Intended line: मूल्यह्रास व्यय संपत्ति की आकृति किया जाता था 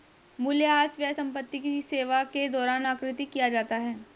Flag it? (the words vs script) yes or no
yes